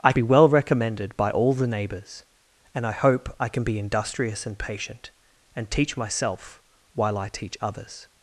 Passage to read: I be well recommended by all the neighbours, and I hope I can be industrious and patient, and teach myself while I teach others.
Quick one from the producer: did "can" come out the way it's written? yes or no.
yes